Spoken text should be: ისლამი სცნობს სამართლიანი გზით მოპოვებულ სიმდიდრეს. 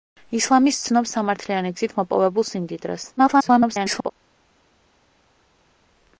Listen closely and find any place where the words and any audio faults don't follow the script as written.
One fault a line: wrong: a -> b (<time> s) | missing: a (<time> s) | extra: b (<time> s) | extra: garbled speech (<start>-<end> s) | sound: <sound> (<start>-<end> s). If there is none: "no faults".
extra: garbled speech (3.2-4.1 s)